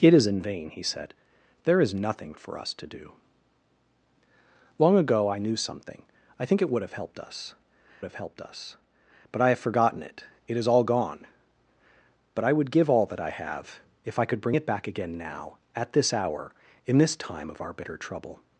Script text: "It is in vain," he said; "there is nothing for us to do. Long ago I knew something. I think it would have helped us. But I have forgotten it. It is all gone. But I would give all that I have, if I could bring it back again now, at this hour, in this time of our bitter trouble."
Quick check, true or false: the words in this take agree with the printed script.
false